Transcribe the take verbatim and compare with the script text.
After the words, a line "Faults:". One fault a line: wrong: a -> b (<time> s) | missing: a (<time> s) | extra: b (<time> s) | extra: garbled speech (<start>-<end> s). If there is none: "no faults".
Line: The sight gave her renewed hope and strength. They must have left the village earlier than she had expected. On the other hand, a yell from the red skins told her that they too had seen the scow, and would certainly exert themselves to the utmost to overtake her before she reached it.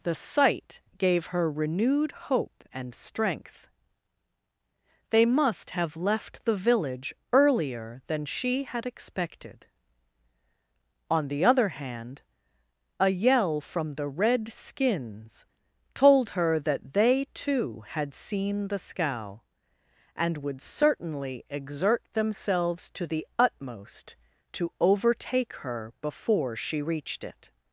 The sight gave her renewed hope and strength. They must have left the village earlier than she had expected. On the other hand, a yell from the red skins told her that they too had seen the scow, and would certainly exert themselves to the utmost to overtake her before she reached it.
Faults:
no faults